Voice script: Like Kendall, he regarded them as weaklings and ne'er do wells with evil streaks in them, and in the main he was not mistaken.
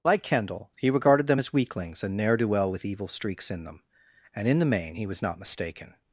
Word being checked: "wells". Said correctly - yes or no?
no